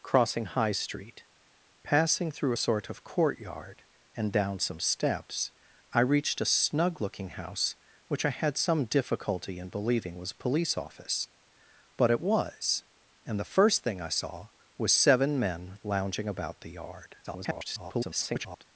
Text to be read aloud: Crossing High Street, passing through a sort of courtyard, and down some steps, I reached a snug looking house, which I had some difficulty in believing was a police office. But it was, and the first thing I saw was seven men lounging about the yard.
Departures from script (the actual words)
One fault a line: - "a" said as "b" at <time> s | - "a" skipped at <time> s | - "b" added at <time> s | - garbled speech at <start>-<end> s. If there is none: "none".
- garbled speech at 17.2-18.6 s